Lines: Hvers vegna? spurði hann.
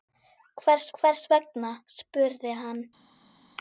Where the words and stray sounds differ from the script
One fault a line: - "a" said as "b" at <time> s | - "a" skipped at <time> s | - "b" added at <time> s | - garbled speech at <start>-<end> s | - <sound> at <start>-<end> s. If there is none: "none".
- "hvers" added at 1.0 s